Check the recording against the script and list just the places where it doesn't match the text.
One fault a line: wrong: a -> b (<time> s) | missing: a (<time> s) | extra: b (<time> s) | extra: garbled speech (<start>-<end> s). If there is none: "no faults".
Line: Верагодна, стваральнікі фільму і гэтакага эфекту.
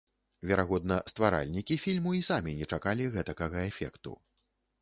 extra: самі не чакалі (2.3 s)